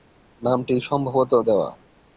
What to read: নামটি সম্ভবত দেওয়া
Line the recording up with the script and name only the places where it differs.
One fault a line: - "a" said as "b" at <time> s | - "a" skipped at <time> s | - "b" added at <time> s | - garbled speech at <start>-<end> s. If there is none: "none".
none